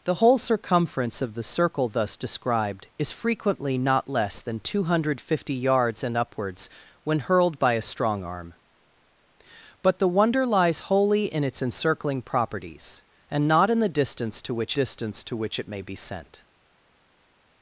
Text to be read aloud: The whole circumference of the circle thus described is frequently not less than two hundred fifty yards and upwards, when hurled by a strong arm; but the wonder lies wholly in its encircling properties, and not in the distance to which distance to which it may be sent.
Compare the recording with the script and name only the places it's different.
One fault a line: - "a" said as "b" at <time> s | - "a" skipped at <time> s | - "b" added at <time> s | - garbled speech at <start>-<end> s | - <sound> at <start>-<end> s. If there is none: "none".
none